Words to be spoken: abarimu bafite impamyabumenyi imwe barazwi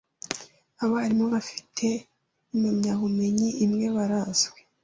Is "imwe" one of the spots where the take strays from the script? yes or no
no